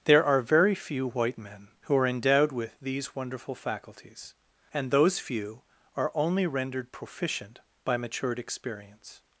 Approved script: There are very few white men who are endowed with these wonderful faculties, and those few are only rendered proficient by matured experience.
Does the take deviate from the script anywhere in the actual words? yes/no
no